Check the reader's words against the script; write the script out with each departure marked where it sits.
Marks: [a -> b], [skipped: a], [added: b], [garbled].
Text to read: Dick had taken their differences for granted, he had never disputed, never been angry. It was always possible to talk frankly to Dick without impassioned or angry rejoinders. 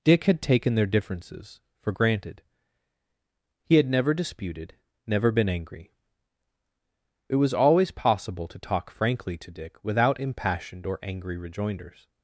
Dick had taken their differences for granted, he had never disputed, never been angry. It was always possible to talk frankly to Dick without impassioned or angry rejoinders.